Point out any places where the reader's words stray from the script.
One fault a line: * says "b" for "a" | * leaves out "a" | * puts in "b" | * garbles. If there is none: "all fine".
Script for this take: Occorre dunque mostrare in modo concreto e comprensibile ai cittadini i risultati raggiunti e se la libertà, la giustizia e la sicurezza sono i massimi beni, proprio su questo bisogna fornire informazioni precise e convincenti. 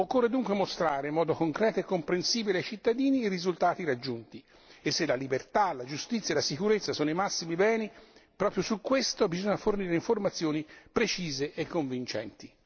all fine